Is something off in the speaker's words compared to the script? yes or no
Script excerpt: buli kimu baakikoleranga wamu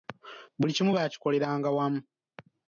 no